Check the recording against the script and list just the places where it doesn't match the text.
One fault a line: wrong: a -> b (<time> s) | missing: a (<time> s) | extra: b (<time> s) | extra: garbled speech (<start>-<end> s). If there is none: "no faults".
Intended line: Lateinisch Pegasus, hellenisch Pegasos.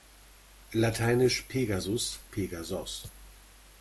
missing: hellenisch (2.2 s)